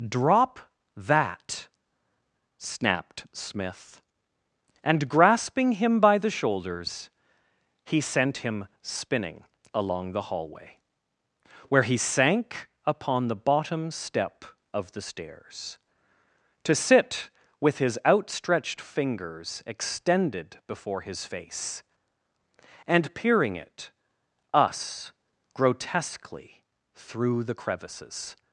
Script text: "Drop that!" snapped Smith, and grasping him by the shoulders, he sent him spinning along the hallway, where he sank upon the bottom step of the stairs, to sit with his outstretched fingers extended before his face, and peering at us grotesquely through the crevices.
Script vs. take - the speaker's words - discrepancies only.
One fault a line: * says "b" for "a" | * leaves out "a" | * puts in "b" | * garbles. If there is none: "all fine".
* says "it" for "at"